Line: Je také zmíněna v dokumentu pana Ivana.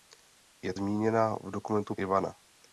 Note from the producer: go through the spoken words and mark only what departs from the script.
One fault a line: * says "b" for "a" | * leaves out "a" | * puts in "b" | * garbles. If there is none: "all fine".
* leaves out "také"
* leaves out "pana"